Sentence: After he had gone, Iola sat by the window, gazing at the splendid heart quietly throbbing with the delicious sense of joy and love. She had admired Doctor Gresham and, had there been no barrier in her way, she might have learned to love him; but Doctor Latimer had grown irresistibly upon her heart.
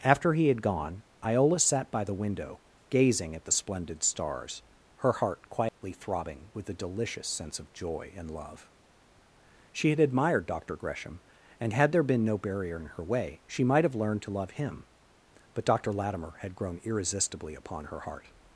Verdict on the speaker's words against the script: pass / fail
fail